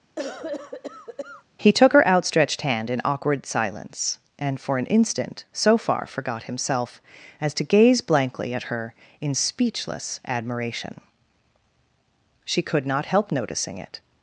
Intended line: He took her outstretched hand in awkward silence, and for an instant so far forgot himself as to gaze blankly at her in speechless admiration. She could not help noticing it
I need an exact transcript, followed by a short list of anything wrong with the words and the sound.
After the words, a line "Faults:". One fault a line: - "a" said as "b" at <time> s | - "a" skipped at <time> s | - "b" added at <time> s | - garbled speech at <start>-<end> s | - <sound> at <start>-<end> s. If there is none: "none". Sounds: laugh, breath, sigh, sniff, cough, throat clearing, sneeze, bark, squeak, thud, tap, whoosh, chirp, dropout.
He took her outstretched hand in awkward silence, and for an instant so far forgot himself as to gaze blankly at her in speechless admiration. She could not help noticing it
Faults:
- cough at 0.2-1.4 s